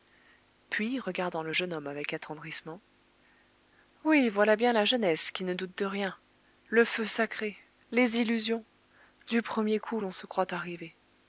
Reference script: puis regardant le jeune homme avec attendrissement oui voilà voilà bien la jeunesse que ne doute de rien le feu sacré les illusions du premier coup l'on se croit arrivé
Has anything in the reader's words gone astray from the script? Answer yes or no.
yes